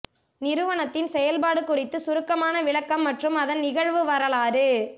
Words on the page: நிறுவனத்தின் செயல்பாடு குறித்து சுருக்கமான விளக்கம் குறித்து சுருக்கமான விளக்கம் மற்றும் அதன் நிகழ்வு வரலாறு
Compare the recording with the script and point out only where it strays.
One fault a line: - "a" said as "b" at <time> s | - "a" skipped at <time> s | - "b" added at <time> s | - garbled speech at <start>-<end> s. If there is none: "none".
- "குறித்து சுருக்கமான விளக்கம்" skipped at 3.0 s